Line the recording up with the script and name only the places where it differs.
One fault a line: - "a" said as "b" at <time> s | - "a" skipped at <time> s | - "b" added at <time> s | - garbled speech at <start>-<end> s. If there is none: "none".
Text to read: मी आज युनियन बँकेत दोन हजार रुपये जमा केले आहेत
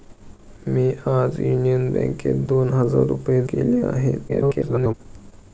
- "जमा" skipped at 3.4 s
- garbled speech at 4.3-4.9 s